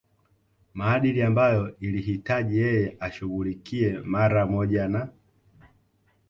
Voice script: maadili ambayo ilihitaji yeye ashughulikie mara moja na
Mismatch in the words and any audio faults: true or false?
false